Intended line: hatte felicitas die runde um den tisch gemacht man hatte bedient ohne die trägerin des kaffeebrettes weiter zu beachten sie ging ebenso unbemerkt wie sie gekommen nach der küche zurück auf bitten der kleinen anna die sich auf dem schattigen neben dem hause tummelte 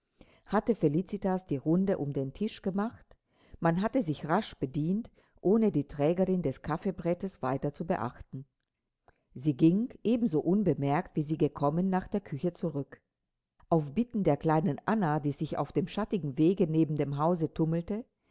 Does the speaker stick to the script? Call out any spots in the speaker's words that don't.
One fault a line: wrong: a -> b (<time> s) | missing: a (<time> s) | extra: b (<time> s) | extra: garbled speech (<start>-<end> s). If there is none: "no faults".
extra: sich rasch (4.0 s)
extra: wege (16.4 s)